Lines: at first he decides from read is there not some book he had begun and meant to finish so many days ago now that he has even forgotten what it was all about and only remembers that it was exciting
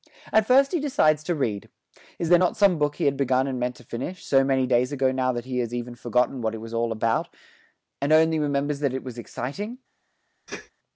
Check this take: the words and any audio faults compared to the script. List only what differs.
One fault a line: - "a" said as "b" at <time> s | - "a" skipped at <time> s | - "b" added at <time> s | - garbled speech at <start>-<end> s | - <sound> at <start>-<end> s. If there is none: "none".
- "from" said as "to" at 1.2 s
- sneeze at 10.5-10.7 s